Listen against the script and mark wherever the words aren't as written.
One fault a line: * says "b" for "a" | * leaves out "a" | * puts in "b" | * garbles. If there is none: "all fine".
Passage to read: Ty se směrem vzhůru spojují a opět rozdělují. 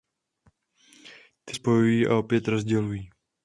* leaves out "se směrem vzhůru"